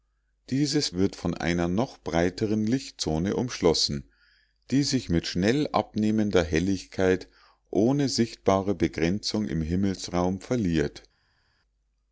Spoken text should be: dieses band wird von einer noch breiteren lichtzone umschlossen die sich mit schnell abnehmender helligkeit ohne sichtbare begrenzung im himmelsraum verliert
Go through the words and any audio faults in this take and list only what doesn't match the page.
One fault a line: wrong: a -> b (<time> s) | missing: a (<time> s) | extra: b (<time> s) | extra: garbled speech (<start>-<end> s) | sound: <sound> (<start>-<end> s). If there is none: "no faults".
missing: band (0.9 s)